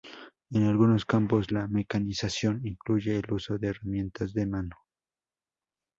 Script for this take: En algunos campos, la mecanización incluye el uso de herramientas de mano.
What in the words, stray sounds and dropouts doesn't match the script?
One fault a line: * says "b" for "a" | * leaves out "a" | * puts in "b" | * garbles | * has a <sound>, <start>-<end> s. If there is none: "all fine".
all fine